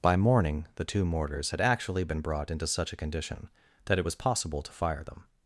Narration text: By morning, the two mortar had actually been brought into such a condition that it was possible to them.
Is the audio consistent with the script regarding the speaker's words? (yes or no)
no